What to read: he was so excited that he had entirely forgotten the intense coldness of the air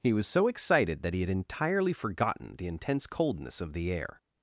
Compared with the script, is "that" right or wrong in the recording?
right